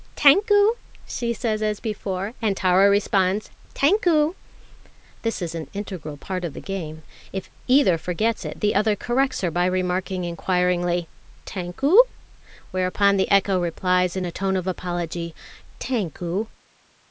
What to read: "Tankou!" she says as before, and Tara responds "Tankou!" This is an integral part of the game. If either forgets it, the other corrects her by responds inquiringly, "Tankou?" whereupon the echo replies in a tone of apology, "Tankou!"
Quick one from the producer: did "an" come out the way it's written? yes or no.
yes